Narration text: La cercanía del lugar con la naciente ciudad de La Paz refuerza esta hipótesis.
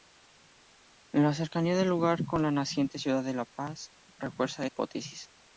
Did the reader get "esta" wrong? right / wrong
wrong